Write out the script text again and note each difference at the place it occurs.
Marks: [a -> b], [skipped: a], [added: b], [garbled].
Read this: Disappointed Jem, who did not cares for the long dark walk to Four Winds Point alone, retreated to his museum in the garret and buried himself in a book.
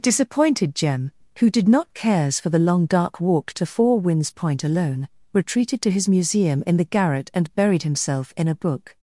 Disappointed Jem, who did not cares for the long dark walk to Four Winds Point alone, retreated to his museum in the garret and buried himself in a book.